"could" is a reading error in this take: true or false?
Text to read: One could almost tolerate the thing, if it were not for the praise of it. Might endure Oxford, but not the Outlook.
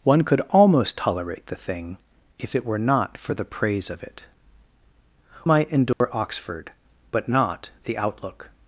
false